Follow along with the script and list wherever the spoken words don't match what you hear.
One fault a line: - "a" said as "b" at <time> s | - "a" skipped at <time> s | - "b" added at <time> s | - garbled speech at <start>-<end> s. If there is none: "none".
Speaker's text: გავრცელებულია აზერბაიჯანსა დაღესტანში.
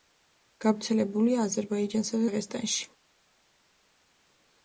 none